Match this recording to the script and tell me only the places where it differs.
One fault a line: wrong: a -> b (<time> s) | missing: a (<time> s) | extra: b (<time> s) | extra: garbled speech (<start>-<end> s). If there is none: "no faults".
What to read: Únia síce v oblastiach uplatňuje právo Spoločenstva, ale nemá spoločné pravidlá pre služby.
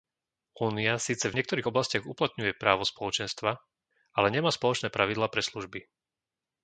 extra: niektorých (1.3 s)